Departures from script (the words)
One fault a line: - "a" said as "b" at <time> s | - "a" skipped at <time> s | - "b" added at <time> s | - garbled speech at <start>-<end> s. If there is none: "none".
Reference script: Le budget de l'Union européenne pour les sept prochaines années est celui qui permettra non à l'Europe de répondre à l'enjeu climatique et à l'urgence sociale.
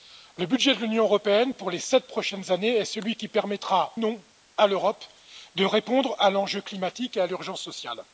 none